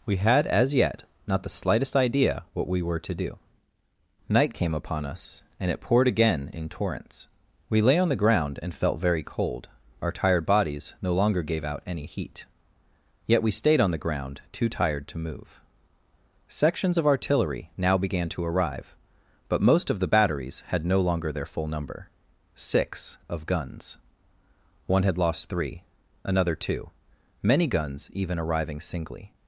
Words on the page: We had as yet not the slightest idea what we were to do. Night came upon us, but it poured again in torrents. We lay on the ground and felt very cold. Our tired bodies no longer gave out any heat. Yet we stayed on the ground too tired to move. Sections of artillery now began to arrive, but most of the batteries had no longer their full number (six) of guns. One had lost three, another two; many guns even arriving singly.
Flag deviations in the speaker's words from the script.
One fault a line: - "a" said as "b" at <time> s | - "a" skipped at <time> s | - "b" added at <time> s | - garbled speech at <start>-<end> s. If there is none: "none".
- "but" said as "and" at 5.6 s